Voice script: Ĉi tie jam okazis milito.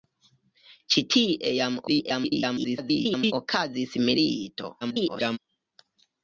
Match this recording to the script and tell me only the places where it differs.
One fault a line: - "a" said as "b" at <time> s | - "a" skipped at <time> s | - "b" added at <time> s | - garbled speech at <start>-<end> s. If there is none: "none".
- garbled speech at 1.9-3.3 s
- garbled speech at 4.8-5.4 s